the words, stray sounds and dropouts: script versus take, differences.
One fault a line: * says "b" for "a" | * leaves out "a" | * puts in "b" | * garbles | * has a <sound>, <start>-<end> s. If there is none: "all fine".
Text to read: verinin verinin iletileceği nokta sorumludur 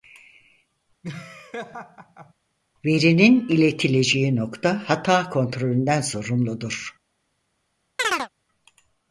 * has a laugh, 1.0-2.3 s
* leaves out "verinin"
* puts in "hata kontrolünden"
* has a chirp, 8.0-8.3 s